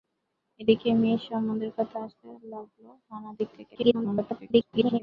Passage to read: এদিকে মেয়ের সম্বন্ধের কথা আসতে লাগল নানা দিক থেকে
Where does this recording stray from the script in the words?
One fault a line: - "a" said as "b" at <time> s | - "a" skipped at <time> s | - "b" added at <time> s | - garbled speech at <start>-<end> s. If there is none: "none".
- garbled speech at 3.7-5.0 s